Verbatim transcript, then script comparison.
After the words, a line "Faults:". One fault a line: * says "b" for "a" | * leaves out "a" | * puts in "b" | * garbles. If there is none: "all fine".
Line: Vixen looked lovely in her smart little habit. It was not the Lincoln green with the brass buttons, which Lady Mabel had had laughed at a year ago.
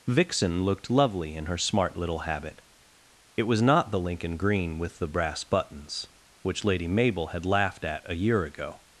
Vixen looked lovely in her smart little habit. It was not the Lincoln green with the brass buttons, which Lady Mabel had laughed at a year ago.
Faults:
* leaves out "had"